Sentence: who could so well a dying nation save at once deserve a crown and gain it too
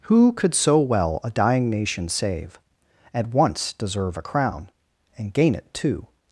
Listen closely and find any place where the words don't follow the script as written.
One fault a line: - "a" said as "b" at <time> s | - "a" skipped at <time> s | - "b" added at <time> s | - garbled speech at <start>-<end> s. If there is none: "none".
none